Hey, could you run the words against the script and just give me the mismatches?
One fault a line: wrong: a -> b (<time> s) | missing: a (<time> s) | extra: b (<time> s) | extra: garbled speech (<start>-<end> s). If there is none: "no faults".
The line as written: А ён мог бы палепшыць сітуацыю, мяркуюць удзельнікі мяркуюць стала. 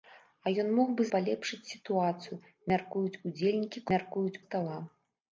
no faults